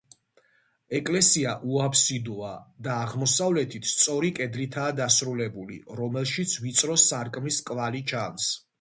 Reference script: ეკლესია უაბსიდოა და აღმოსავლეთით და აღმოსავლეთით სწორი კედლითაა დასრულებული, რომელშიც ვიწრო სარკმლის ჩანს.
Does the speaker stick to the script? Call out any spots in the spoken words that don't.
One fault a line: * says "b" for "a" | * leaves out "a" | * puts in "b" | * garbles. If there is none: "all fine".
* leaves out "და აღმოსავლეთით"
* puts in "კვალი"